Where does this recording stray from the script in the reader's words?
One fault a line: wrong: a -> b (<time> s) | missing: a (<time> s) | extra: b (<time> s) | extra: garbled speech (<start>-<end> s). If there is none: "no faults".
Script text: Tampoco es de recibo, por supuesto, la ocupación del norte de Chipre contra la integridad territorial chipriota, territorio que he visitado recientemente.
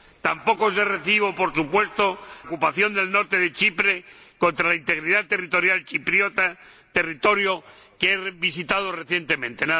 missing: la (2.2 s)